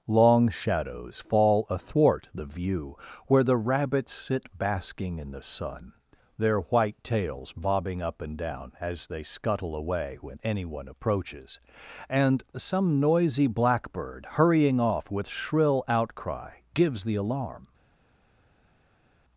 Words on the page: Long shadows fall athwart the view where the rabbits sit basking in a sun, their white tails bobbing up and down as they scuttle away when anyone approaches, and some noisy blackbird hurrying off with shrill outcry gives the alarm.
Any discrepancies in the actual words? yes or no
yes